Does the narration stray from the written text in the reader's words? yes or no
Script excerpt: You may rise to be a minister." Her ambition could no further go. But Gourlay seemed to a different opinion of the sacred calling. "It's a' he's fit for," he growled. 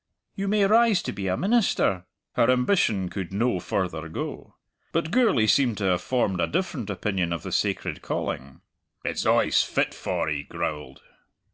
yes